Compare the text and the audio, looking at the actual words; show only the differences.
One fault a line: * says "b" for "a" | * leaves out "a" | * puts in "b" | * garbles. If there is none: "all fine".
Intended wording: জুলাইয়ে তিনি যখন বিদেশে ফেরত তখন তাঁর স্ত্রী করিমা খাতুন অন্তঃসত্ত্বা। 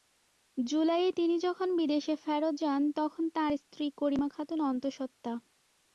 * puts in "যান"